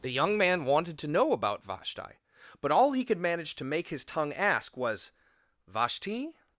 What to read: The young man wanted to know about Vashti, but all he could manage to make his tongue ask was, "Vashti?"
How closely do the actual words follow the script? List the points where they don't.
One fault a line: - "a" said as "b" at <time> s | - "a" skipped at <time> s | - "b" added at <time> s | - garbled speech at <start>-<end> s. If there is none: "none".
none